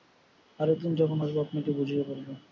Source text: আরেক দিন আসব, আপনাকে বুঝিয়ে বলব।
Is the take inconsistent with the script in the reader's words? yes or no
yes